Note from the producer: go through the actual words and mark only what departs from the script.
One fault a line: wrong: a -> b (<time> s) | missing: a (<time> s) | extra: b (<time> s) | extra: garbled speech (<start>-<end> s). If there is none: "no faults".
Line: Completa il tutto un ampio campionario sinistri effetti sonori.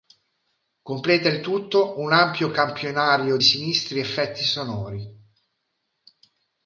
no faults